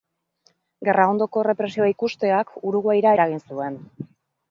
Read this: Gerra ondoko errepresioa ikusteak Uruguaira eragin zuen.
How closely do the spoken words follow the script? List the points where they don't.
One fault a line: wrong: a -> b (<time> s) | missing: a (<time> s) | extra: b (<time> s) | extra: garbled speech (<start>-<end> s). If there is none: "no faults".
no faults